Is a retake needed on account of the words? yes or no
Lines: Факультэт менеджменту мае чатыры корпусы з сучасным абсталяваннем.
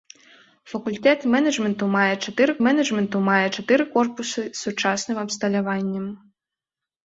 yes